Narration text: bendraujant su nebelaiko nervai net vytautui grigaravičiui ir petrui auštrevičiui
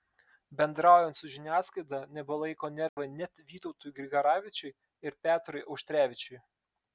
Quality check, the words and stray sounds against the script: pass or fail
fail